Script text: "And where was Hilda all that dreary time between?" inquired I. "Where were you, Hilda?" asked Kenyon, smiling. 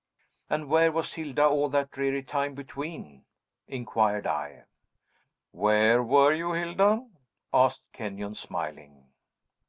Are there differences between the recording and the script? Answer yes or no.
no